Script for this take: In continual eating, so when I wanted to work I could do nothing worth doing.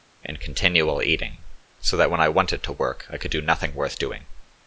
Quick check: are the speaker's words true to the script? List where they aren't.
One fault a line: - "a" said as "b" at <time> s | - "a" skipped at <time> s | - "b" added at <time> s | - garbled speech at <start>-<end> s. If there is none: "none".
- "that" added at 1.9 s